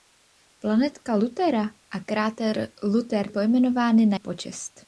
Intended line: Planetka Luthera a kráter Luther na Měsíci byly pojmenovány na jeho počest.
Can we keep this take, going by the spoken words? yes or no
no